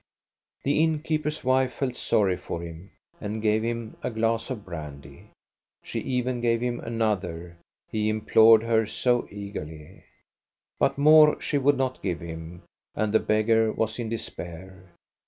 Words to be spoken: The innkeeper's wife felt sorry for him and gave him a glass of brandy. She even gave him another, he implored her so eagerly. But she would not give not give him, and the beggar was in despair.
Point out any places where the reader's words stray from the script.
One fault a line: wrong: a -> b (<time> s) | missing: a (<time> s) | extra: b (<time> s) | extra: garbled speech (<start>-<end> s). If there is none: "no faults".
extra: more (11.0 s)
missing: not give (12.2 s)